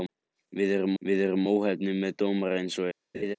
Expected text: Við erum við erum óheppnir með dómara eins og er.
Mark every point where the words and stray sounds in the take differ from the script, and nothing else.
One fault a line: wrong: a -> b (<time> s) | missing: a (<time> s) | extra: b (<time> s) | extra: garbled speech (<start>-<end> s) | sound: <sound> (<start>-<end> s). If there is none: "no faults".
sound: laugh (3.1-3.4 s)